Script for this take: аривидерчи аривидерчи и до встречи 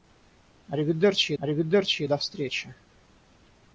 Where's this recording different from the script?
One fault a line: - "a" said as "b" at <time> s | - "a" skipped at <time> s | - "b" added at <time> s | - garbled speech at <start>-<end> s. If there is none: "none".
none